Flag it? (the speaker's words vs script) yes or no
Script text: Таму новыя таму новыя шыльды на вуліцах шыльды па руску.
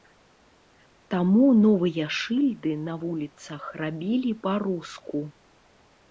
yes